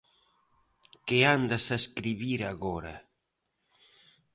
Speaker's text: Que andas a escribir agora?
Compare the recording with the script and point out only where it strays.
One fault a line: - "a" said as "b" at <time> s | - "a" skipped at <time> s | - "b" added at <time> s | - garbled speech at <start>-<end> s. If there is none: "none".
none